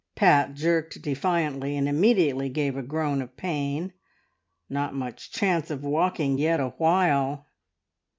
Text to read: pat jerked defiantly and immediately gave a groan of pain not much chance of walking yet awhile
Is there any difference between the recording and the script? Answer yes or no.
no